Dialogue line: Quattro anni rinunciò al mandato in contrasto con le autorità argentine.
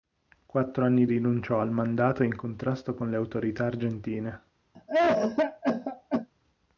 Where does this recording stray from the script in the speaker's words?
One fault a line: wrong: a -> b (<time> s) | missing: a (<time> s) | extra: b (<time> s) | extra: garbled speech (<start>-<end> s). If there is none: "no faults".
no faults